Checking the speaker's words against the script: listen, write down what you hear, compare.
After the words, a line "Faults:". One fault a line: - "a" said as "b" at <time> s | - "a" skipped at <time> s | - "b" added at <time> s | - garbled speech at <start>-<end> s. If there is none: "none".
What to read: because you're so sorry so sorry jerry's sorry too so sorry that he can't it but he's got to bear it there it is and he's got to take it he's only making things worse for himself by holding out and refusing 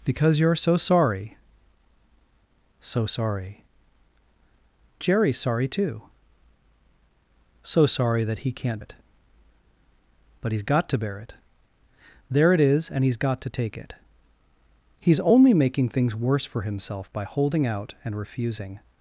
because you're so sorry so sorry jerry's sorry too so sorry that he can't it but he's got to bear it there it is and he's got to take it he's only making things worse for himself by holding out and refusing
Faults:
none